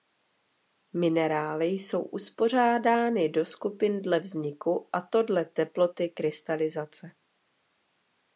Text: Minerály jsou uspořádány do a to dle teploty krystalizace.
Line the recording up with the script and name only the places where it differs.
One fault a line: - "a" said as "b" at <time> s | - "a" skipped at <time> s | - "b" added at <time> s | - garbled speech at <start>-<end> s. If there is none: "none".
- "skupin dle vzniku" added at 3.5 s